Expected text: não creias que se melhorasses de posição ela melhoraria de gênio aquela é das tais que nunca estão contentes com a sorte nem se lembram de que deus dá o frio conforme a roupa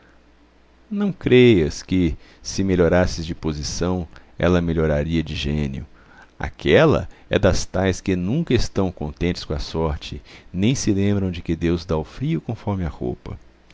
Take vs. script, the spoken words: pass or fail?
pass